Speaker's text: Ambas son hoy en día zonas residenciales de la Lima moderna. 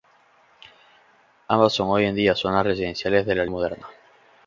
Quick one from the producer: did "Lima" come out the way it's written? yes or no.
no